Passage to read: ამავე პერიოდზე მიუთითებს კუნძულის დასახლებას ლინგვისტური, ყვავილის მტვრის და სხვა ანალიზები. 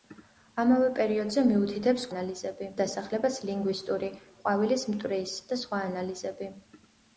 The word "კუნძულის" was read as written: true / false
false